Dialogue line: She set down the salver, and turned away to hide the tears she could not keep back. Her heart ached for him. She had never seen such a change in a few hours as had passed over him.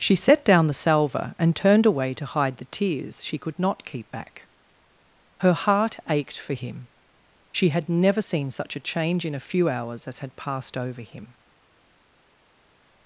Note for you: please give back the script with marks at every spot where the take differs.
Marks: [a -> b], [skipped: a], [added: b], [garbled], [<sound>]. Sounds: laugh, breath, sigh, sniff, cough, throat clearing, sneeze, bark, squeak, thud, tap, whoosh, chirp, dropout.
She set down the salver, and turned away to hide the tears she could not keep back. Her heart ached for him. She had never seen such a change in a few hours as had passed over him.